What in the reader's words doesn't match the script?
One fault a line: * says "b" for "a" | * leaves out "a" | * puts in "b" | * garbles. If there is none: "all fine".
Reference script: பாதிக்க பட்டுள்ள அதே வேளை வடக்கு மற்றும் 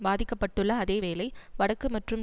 all fine